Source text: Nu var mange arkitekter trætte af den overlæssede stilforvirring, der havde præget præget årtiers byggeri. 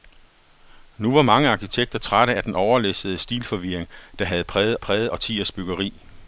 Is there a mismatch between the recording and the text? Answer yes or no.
no